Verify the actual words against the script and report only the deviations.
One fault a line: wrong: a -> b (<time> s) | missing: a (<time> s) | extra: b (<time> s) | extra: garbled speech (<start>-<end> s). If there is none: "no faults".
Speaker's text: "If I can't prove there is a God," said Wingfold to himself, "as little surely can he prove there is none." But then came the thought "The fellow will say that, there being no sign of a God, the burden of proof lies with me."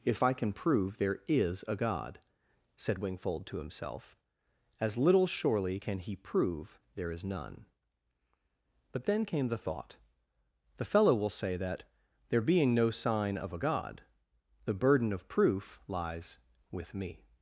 wrong: can't -> can (0.3 s)